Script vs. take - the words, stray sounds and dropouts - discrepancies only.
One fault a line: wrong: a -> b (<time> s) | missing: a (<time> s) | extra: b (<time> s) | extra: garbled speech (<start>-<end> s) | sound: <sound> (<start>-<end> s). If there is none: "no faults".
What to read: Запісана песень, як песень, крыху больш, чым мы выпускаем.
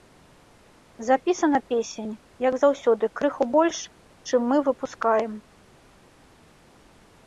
wrong: песень -> заўсёды (2.6 s)